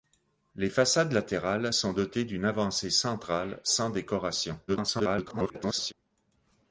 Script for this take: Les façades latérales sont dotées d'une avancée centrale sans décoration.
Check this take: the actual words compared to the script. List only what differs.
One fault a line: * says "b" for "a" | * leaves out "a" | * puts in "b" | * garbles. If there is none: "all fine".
* garbles